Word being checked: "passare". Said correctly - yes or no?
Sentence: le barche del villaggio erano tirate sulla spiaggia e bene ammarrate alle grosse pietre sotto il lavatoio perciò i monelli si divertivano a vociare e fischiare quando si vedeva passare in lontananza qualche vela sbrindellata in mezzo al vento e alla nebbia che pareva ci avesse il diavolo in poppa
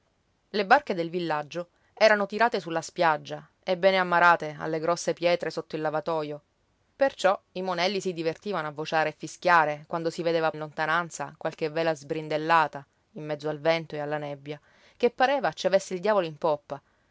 no